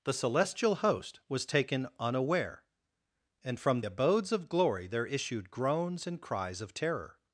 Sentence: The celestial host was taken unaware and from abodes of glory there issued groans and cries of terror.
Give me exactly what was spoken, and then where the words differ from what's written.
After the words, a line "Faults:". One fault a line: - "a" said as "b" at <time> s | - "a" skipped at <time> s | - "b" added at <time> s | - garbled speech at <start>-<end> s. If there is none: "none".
The celestial host was taken unaware and from abodes of glory there issued groans and cries of terror.
Faults:
none